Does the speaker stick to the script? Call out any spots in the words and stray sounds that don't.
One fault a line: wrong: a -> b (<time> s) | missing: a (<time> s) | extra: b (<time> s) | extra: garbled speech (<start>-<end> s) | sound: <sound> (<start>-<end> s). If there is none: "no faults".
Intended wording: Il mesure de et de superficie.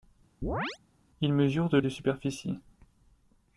sound: chirp (0.4-0.8 s)